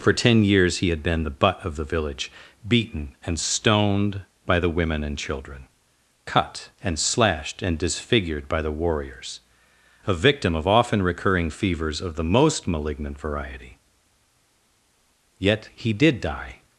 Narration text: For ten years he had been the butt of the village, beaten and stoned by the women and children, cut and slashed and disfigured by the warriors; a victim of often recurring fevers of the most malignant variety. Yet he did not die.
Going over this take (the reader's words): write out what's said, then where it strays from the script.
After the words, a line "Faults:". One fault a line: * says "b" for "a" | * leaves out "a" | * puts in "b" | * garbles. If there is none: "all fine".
For ten years he had been the butt of the village, beaten and stoned by the women and children, cut and slashed and disfigured by the warriors; a victim of often recurring fevers of the most malignant variety. Yet he did die.
Faults:
* leaves out "not"